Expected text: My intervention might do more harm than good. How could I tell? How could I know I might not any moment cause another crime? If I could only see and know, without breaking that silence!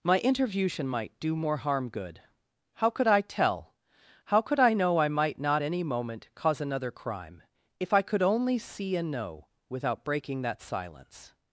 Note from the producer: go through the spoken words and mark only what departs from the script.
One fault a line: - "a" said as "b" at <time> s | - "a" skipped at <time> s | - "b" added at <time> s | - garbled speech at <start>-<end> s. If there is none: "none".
- "than" skipped at 1.9 s